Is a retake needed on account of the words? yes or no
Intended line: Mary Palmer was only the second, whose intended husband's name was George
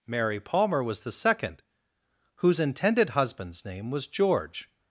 yes